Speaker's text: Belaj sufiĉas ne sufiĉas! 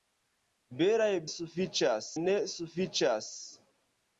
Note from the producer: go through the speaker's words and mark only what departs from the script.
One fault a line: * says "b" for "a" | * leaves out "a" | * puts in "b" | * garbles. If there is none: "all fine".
all fine